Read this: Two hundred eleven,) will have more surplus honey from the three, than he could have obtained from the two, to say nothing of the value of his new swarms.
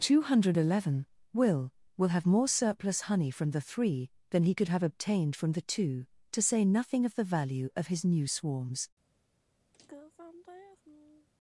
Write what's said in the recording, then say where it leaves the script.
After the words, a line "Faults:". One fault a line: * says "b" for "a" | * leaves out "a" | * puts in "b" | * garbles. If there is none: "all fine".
Two hundred eleven,) will will have more surplus honey from the three, than he could have obtained from the two, to say nothing of the value of his new swarms.
Faults:
* puts in "will"